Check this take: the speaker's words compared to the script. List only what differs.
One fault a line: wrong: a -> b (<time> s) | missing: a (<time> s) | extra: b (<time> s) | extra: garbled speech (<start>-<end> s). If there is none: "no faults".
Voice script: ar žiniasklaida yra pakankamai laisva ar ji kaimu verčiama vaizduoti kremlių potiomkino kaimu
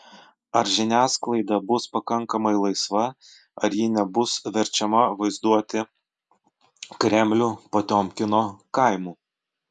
wrong: yra -> bus (1.7 s)
wrong: kaimu -> nebus (4.0 s)